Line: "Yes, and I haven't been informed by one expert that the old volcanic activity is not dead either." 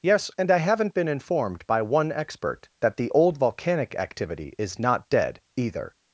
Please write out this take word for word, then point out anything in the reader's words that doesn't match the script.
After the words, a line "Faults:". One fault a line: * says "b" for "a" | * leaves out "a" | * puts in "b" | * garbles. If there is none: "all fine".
"Yes, and I haven't been informed by one expert that the old volcanic activity is not dead either."
Faults:
all fine